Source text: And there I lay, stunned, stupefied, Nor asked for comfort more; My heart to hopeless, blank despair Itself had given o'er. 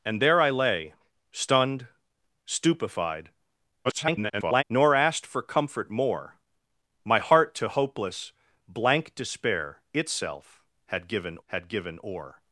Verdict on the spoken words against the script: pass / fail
fail